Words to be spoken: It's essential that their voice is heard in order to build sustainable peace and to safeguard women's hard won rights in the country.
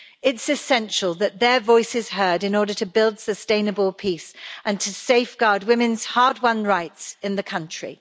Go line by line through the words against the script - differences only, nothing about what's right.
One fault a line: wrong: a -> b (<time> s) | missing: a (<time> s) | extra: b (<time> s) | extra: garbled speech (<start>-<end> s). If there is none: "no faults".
no faults